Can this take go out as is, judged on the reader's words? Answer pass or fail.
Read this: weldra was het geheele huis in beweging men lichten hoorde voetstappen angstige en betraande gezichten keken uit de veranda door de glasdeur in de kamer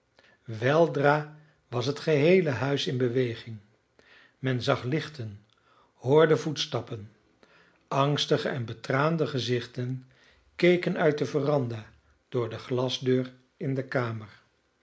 fail